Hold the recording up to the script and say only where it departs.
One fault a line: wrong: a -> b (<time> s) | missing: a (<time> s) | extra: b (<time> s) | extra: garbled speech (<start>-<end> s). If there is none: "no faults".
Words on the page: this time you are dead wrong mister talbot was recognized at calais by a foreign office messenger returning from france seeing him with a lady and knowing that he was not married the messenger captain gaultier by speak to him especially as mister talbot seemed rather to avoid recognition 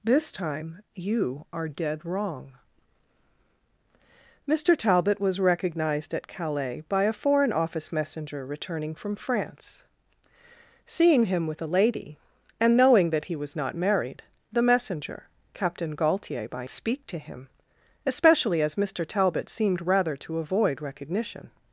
no faults